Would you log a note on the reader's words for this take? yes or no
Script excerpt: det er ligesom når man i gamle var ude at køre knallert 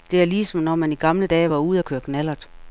yes